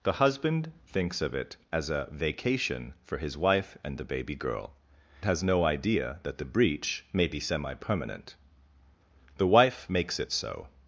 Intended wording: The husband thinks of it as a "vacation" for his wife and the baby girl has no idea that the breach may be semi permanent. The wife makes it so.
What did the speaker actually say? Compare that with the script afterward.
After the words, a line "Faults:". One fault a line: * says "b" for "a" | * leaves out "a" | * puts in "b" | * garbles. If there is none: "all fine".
The husband thinks of it as a "vacation" for his wife and the baby girl has no idea that the breach may be semi permanent. The wife makes it so.
Faults:
all fine